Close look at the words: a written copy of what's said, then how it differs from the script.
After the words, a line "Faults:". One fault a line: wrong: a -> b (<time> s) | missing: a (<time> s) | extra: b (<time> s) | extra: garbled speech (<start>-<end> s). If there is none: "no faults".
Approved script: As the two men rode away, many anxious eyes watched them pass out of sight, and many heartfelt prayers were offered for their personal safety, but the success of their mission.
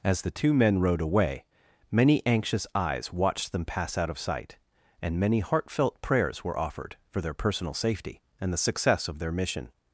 As the two men rode away, many anxious eyes watched them pass out of sight, and many heartfelt prayers were offered for their personal safety, and the success of their mission.
Faults:
wrong: but -> and (8.4 s)